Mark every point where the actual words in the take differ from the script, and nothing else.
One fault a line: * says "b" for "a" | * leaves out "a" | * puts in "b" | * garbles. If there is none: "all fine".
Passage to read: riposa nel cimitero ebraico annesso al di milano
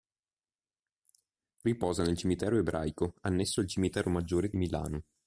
* puts in "cimitero maggiore"